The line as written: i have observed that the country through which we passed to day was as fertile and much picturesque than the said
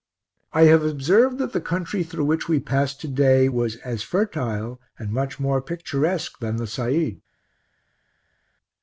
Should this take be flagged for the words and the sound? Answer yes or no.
yes